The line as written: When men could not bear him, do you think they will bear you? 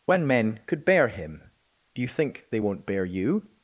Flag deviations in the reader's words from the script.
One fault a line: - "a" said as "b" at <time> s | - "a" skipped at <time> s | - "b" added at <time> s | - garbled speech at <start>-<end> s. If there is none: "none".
- "not" skipped at 0.8 s
- "will" said as "won't" at 2.6 s